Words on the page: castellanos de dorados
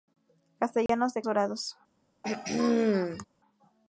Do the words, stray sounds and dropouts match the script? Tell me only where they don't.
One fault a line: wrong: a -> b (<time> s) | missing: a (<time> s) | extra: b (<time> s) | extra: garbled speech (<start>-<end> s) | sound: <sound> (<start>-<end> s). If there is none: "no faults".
sound: dropout (0.9-0.9 s)
sound: throat clearing (2.2-3.3 s)